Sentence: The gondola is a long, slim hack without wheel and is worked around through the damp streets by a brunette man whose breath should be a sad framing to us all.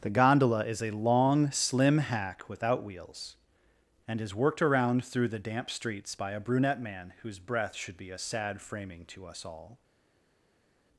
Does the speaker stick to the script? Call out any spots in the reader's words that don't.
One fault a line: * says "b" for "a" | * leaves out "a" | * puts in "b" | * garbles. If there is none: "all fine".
* says "wheels" for "wheel"